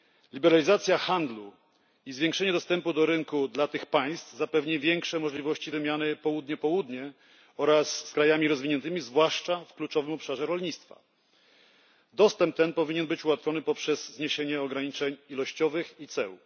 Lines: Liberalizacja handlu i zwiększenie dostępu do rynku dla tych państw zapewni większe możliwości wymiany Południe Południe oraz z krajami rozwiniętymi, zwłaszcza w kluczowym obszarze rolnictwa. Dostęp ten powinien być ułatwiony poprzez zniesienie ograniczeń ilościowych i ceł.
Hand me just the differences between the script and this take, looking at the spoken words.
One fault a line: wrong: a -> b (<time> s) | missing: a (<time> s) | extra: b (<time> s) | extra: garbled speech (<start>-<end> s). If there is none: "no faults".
no faults